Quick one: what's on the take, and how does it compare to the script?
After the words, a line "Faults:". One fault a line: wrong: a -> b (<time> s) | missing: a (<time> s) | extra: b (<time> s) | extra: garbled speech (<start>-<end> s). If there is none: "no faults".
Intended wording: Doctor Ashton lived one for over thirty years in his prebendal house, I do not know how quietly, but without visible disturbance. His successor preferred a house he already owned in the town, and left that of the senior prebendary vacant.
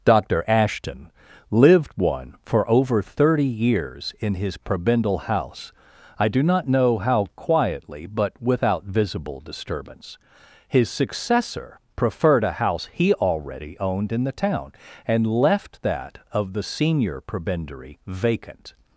Doctor Ashton lived one for over thirty years in his prebendal house, I do not know how quietly, but without visible disturbance. His successor preferred a house he already owned in the town, and left that of the senior prebendary vacant.
Faults:
no faults